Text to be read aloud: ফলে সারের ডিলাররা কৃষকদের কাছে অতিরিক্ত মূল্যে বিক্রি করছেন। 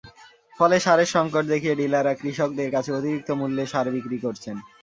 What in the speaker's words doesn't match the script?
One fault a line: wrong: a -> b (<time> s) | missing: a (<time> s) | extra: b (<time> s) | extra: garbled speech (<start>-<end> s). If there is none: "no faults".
extra: সংকট দেখিয়ে (1.1 s)
extra: সার (3.7 s)